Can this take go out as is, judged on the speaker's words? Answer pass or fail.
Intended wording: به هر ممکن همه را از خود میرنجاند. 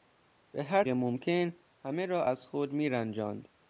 pass